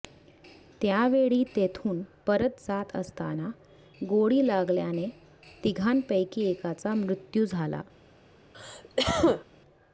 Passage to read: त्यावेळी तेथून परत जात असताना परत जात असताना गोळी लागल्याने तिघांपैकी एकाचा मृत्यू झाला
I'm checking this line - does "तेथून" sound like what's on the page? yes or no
yes